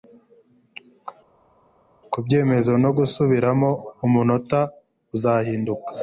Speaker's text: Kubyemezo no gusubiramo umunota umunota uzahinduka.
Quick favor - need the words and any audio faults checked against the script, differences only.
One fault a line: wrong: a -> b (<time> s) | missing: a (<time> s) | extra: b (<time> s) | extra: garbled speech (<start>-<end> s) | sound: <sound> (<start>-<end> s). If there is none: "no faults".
missing: umunota (4.6 s)